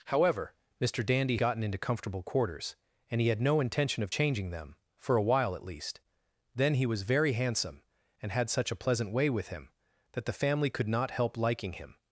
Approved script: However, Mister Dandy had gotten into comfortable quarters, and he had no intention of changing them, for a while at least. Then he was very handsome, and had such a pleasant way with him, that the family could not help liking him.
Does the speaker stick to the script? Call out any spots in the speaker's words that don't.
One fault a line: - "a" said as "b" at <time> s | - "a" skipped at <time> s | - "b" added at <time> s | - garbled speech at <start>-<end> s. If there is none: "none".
- "had" skipped at 1.4 s